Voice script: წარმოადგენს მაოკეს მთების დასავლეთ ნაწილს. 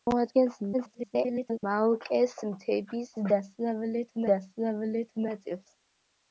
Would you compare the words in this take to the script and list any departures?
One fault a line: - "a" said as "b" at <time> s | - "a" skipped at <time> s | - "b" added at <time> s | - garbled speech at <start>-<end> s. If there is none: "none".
- garbled speech at 0.7-1.6 s
- "დასავლეთ" added at 4.3 s